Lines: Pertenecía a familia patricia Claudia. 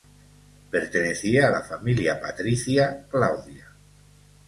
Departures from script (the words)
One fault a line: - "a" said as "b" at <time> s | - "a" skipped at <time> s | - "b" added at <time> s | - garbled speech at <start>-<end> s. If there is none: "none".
- "la" added at 1.5 s